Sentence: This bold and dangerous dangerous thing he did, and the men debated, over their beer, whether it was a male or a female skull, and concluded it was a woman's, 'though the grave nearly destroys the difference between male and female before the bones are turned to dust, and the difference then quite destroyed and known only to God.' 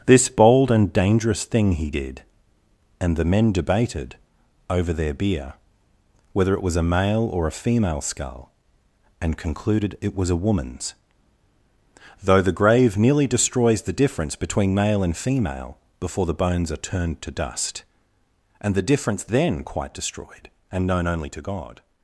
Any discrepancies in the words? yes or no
yes